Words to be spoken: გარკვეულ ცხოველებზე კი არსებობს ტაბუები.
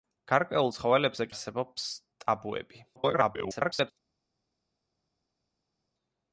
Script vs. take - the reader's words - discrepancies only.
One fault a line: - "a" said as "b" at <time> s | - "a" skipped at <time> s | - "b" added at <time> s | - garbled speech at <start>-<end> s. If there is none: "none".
- "კი" skipped at 1.3 s
- garbled speech at 3.0-3.9 s